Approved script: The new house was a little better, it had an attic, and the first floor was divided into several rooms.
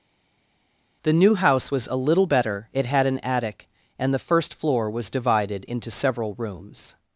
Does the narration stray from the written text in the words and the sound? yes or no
no